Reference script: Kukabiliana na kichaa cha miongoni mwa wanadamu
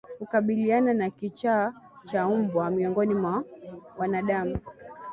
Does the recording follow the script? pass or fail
fail